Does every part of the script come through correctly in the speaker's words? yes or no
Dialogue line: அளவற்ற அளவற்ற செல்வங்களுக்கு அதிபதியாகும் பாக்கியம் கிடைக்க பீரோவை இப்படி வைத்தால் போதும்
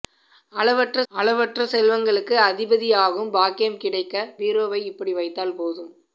yes